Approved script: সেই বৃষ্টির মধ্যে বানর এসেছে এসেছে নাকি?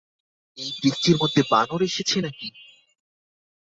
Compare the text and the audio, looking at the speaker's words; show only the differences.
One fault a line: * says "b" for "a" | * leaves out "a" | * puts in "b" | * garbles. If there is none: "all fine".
* says "এই" for "সেই"
* leaves out "এসেছে"